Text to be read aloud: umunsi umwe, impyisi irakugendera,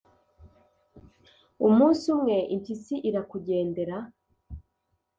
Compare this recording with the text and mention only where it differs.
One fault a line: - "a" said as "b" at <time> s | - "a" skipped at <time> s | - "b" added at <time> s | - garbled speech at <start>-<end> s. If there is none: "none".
none